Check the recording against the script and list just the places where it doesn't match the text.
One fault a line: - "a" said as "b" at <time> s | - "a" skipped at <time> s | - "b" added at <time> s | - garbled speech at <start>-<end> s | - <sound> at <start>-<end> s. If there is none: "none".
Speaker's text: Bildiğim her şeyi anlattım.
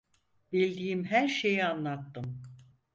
none